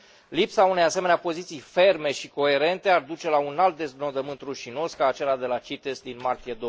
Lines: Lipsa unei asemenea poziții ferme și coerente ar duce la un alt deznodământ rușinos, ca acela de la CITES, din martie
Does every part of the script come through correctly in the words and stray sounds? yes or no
yes